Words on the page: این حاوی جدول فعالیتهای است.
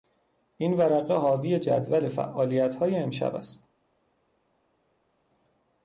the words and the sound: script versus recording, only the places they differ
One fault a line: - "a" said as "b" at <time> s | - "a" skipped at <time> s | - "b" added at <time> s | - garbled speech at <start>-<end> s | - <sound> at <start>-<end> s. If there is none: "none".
- "ورقه" added at 0.7 s
- "امشب" added at 3.0 s